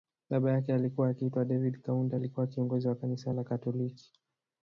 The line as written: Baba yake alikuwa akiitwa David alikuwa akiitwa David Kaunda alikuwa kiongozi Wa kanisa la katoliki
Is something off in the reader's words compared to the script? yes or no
yes